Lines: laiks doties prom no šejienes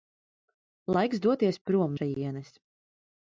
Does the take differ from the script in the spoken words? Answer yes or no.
yes